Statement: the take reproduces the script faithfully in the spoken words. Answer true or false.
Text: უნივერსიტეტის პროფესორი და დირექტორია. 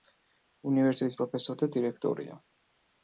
true